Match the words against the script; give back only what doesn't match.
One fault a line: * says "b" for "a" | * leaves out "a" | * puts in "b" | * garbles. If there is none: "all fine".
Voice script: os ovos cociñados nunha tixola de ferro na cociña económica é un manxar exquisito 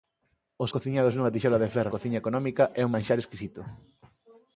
* leaves out "ovos"
* leaves out "na"